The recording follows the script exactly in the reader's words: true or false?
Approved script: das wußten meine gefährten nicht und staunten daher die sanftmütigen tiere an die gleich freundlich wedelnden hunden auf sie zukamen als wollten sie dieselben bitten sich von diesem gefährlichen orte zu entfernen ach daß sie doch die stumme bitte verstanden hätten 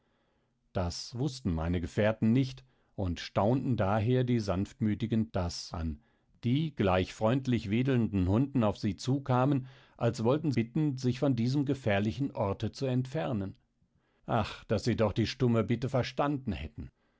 false